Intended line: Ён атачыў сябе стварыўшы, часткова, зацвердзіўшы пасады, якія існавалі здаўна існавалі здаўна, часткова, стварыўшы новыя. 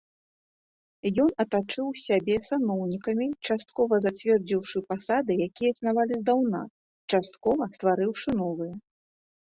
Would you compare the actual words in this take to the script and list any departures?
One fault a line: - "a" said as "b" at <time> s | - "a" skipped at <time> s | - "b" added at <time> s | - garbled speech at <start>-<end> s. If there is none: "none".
- "стварыўшы" said as "саноўнікамі" at 2.5 s
- "існавалі здаўна" skipped at 6.6 s